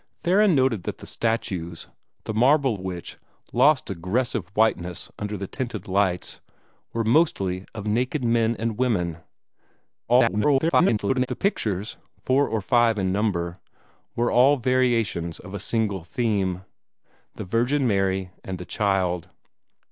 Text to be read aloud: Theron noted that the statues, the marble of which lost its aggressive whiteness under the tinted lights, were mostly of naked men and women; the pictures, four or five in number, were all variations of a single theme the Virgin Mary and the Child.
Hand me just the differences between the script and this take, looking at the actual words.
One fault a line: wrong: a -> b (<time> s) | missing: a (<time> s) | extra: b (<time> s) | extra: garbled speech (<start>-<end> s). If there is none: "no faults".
missing: of (2.8 s)
missing: its (3.9 s)
extra: garbled speech (10.1-11.3 s)